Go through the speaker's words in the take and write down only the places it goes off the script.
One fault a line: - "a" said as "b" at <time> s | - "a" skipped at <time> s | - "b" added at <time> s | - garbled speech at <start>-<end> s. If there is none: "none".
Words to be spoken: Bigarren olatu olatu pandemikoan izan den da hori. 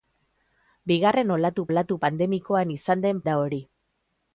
none